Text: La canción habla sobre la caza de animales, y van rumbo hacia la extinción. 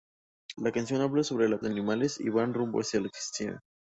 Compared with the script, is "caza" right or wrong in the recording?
wrong